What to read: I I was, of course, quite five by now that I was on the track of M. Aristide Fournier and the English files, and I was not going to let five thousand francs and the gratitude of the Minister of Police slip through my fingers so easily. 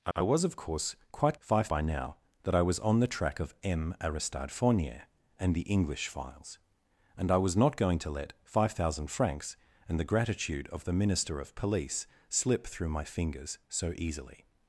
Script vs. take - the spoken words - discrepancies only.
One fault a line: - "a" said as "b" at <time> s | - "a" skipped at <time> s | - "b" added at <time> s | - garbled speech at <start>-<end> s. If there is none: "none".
none